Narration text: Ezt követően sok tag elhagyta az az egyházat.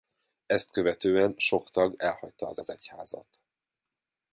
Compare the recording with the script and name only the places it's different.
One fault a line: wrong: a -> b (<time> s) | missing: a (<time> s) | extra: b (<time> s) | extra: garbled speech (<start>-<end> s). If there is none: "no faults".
no faults